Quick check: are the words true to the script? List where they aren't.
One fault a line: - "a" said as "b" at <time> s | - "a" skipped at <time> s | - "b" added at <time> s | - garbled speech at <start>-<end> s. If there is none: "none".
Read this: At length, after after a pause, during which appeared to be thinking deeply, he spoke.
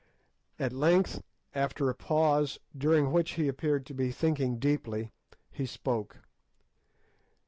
- "after" skipped at 1.9 s
- "he" added at 3.3 s